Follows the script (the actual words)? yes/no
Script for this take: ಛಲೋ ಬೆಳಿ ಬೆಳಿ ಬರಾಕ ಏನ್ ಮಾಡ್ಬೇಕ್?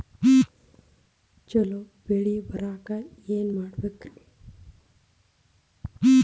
no